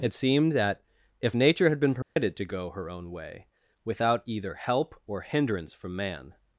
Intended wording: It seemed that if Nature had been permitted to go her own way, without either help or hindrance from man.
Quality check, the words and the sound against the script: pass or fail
fail